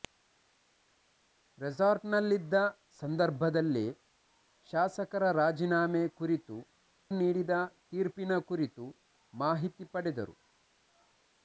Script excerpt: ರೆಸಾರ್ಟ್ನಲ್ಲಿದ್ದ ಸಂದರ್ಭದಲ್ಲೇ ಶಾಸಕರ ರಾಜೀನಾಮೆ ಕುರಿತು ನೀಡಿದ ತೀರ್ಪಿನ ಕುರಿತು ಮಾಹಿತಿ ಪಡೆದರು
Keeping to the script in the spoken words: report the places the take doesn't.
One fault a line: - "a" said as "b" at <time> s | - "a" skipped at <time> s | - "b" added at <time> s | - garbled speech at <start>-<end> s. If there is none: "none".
none